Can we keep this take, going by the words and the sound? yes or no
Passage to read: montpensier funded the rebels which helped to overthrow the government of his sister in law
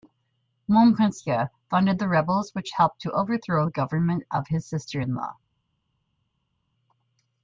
yes